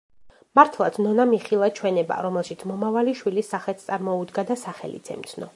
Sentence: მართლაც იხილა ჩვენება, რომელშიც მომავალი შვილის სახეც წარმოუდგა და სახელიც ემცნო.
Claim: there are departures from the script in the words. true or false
true